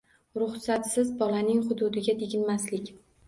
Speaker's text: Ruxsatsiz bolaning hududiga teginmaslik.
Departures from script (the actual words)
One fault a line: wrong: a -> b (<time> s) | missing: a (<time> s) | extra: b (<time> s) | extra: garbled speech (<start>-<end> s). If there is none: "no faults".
no faults